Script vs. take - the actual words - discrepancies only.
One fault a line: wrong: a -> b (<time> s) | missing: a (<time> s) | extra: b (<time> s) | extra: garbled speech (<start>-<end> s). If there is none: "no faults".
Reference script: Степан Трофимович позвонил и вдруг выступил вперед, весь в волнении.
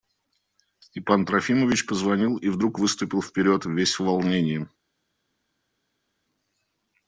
no faults